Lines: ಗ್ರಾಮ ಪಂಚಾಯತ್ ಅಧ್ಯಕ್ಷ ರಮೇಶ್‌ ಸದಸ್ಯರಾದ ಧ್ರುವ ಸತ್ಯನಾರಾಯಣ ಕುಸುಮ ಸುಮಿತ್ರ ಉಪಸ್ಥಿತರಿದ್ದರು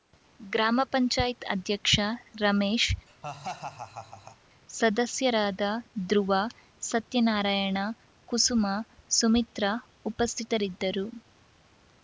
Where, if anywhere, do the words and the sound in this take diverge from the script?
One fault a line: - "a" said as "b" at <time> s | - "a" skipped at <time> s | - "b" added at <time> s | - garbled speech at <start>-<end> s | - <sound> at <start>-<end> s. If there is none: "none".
- laugh at 3.1-4.4 s